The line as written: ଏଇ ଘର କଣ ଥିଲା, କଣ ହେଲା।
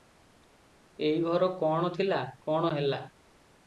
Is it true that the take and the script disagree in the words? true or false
false